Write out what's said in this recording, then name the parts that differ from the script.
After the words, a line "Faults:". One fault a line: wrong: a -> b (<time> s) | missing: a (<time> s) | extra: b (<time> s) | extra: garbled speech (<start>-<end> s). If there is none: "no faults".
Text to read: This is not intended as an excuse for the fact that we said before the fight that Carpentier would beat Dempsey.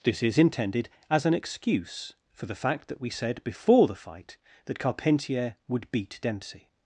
This is intended as an excuse for the fact that we said before the fight that Carpentier would beat Dempsey.
Faults:
missing: not (0.4 s)